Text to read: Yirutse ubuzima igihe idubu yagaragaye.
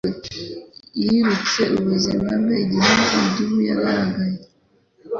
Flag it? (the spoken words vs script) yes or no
yes